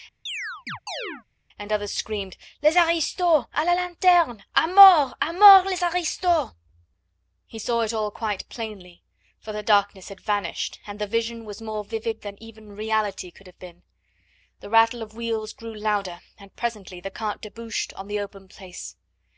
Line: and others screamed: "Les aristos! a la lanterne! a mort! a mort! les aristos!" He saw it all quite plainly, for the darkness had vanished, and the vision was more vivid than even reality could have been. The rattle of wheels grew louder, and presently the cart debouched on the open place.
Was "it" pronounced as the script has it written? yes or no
yes